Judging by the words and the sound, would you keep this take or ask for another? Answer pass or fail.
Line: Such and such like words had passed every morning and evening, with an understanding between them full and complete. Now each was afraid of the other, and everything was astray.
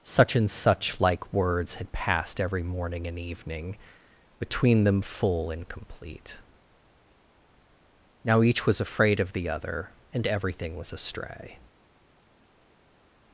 fail